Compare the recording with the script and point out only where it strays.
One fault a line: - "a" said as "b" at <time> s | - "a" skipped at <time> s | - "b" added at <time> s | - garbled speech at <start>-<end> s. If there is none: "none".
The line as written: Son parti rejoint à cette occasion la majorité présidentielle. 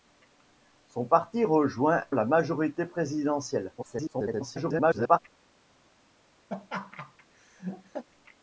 - "à cette occasion" skipped at 2.0 s
- garbled speech at 3.8-5.2 s